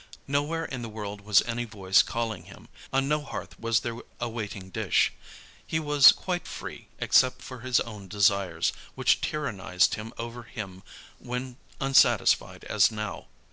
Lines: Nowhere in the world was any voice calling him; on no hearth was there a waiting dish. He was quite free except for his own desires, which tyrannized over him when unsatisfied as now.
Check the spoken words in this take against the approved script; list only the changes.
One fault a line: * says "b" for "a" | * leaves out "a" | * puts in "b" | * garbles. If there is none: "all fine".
all fine